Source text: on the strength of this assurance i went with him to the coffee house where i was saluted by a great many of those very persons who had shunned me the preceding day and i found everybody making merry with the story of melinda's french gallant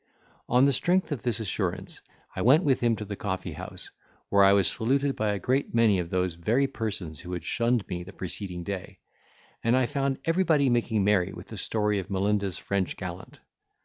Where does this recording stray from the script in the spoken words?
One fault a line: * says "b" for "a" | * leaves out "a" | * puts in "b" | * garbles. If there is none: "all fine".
all fine